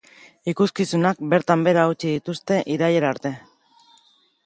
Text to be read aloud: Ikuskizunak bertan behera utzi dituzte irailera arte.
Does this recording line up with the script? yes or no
yes